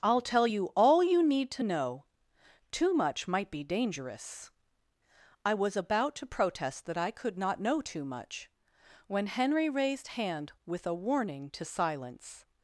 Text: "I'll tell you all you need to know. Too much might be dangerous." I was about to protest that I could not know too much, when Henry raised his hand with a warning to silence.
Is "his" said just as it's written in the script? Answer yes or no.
no